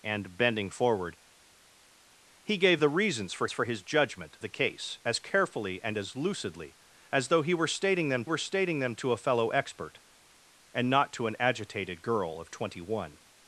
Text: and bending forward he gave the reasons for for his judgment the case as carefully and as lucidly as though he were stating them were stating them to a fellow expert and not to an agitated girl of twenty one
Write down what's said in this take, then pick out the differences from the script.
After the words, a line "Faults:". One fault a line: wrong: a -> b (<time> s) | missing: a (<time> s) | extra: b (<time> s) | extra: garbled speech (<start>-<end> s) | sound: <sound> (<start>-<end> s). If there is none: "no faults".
and bending forward he gave the reasons for for his judgment the case as carefully and as lucidly as though he were stating them were stating them to a fellow expert and not to an agitated girl of twenty one
Faults:
no faults